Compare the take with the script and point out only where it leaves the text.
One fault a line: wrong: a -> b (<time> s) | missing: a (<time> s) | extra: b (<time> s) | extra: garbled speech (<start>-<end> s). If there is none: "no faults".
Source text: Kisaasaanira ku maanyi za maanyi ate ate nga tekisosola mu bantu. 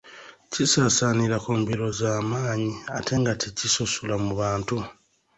wrong: maanyi -> mbiro (1.6 s)
missing: ate (3.1 s)